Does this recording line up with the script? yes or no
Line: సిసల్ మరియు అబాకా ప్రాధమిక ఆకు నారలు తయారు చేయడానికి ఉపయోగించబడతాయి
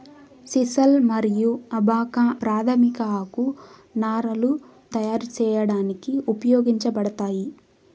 yes